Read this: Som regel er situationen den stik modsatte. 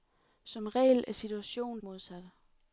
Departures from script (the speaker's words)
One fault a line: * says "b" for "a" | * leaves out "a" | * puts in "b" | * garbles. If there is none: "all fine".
* leaves out "den stik"